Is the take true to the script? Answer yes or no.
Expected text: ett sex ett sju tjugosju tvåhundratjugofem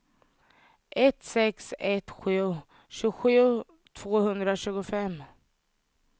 yes